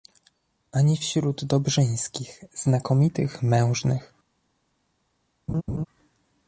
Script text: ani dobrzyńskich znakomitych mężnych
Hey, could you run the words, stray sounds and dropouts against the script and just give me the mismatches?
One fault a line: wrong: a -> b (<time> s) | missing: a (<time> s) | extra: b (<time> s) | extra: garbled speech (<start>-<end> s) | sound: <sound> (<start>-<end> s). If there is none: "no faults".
extra: wśród (1.0 s)
sound: laugh (5.5-5.9 s)